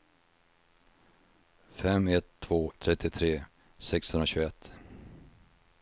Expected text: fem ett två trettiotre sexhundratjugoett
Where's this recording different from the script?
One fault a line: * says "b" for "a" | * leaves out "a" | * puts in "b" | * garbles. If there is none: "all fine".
all fine